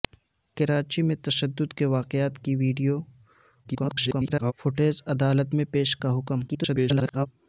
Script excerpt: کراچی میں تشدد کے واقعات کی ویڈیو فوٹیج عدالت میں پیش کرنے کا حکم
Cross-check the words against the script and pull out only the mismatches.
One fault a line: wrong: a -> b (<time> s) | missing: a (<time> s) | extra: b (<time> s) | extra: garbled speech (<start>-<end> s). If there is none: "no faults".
extra: garbled speech (3.6-4.5 s)
missing: کرنے (6.0 s)
extra: garbled speech (6.5-7.3 s)